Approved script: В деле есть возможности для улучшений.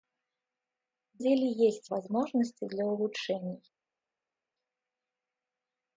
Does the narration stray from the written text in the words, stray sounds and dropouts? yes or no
no